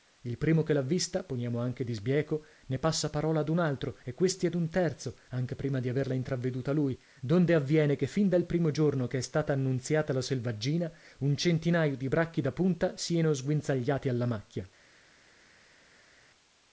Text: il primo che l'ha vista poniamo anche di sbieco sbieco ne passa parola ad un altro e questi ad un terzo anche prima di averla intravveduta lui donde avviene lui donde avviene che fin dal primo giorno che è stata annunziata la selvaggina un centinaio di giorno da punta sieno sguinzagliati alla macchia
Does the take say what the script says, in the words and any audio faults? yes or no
no